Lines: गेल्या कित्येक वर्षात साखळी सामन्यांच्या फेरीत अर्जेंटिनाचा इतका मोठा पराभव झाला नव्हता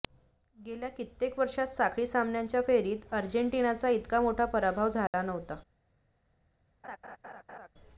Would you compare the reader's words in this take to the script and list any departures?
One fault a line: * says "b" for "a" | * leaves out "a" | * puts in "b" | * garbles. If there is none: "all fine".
all fine